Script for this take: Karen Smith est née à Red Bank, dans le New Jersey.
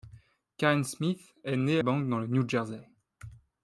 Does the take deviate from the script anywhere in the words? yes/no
yes